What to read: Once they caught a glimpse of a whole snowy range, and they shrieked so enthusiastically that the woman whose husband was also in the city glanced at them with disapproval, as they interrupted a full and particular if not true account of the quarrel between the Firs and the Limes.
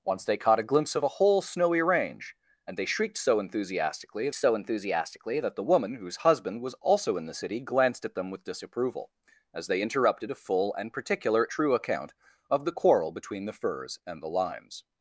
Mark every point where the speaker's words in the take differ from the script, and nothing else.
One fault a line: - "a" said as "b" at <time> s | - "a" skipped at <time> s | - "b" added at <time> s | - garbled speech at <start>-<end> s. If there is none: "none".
- "so enthusiastically" added at 4.3 s
- "if not" skipped at 11.5 s